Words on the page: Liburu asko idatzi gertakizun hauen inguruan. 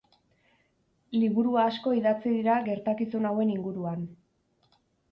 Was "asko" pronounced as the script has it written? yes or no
yes